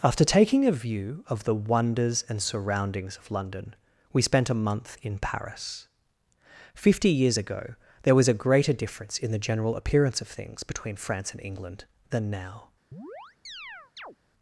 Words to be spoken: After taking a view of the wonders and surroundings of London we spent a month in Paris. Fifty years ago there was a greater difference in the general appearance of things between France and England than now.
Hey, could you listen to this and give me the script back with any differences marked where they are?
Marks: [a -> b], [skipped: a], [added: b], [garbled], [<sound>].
After taking a view of the wonders and surroundings of London we spent a month in Paris. Fifty years ago there was a greater difference in the general appearance of things between France and England than now. [chirp]